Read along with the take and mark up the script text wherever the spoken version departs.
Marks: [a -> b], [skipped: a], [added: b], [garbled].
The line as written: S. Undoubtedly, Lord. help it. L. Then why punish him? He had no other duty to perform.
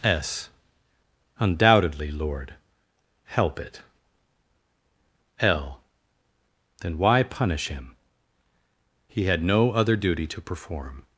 S. Undoubtedly, Lord. help it. L. Then why punish him? He had no other duty to perform.